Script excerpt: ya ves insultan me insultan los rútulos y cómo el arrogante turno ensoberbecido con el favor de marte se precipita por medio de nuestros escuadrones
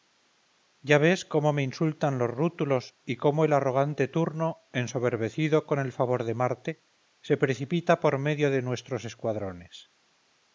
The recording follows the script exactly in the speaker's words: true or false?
false